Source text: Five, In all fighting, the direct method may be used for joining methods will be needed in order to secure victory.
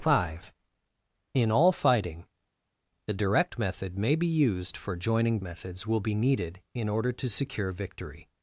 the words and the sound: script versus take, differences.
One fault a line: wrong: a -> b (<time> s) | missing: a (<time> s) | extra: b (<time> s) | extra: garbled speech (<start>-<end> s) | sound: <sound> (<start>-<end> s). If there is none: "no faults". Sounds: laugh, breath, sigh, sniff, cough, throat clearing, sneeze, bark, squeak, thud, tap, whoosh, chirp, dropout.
no faults